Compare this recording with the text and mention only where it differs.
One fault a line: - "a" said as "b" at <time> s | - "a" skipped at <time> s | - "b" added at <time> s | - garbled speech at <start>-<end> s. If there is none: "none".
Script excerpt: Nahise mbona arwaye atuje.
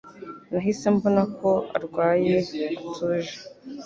- "ko" added at 1.4 s